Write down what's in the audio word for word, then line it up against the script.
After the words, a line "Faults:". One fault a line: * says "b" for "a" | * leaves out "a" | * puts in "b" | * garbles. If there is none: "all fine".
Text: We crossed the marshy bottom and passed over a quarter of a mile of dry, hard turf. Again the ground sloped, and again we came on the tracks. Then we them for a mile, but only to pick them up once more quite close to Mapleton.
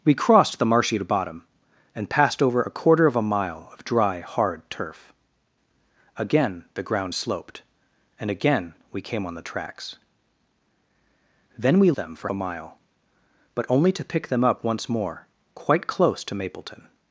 We crossed the marshy bottom and passed over a quarter of a mile of dry, hard turf. Again the ground sloped, and again we came on the tracks. Then we them for a mile, but only to pick them up once more quite close to Mapleton.
Faults:
all fine